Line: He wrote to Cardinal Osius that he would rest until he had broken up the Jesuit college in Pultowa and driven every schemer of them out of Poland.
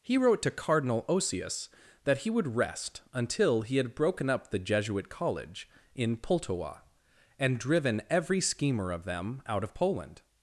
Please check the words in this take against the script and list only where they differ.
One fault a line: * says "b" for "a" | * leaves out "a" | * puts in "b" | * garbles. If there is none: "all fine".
all fine